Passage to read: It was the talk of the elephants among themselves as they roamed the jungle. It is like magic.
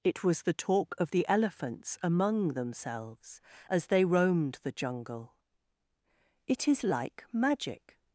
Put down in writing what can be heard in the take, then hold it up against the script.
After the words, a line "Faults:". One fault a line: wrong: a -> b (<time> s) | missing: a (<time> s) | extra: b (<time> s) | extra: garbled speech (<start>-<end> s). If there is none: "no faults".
It was the talk of the elephants among themselves as they roamed the jungle. It is like magic.
Faults:
no faults